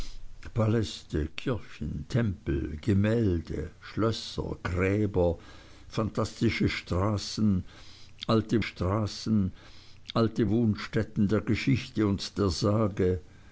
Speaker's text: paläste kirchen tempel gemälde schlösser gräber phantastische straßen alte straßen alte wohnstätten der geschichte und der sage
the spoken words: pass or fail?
pass